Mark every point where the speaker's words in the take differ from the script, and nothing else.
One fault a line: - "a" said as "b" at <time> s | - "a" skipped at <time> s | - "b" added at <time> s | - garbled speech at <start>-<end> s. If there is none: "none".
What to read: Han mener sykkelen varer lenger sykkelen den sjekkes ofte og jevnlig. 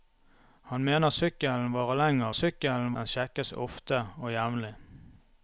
none